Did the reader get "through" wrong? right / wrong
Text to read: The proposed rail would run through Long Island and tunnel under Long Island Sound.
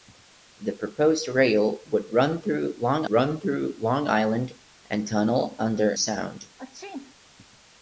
right